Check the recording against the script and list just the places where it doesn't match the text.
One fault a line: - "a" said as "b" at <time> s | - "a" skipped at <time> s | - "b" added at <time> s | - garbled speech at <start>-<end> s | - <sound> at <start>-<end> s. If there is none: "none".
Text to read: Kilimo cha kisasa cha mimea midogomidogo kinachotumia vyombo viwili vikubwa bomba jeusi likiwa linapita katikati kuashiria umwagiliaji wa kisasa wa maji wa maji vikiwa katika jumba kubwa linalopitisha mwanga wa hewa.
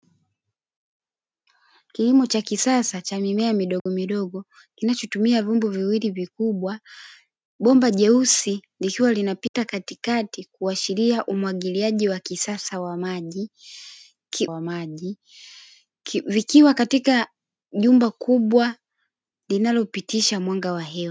- dropout at 3.8-3.9 s
- dropout at 9.5-9.5 s